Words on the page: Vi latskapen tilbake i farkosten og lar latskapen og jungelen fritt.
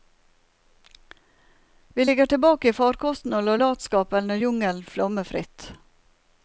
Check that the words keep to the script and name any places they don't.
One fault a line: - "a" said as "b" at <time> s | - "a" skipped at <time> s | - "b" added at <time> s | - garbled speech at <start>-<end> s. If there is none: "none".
- "latskapen" said as "ligger" at 2.0 s
- "flomme" added at 4.8 s